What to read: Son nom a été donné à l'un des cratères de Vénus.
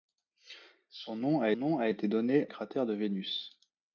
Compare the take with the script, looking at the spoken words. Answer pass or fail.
fail